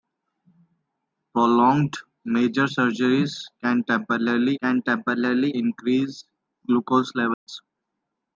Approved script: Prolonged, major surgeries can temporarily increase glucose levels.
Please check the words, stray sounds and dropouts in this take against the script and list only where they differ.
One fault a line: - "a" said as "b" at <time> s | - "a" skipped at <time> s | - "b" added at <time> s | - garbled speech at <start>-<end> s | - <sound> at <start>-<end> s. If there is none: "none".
- "can temporarily" added at 4.6 s
- dropout at 7.3-7.5 s